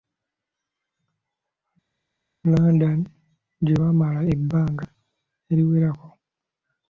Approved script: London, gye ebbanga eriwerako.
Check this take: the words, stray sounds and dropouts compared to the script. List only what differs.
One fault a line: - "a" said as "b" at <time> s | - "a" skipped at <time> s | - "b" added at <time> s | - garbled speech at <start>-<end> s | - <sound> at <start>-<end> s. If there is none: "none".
- "baamala" added at 3.8 s